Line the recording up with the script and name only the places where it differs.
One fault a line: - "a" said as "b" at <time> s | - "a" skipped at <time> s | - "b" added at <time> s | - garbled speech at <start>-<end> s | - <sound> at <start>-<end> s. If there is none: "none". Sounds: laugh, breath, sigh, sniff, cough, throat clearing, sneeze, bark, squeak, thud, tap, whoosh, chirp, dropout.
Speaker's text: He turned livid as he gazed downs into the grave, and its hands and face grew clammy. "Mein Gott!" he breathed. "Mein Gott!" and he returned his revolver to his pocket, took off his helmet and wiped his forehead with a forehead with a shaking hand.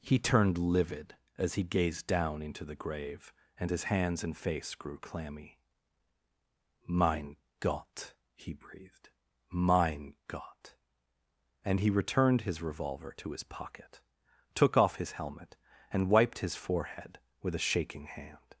- "downs" said as "down" at 2.1 s
- "its" said as "his" at 3.7 s
- "forehead with a" skipped at 17.6 s